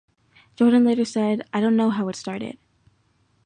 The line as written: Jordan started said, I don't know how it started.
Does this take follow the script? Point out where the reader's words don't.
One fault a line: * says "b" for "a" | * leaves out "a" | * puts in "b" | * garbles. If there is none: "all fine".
* says "later" for "started"